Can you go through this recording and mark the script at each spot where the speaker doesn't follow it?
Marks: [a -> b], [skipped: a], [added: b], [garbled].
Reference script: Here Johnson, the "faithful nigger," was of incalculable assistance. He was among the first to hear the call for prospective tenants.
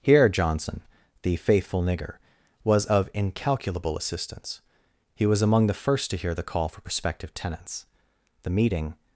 Here Johnson, the "faithful nigger," was of incalculable assistance. He was among the first to hear the call for prospective tenants. [added: The meeting]